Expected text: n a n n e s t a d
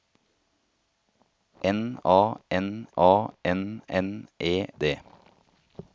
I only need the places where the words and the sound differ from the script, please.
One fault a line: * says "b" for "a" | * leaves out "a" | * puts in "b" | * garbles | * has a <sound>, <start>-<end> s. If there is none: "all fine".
* puts in "a"
* puts in "n"
* leaves out "s t a"